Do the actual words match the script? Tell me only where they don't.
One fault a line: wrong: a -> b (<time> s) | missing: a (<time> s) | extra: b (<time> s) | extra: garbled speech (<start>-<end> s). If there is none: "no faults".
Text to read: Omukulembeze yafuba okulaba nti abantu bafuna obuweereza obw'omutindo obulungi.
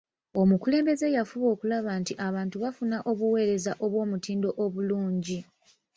no faults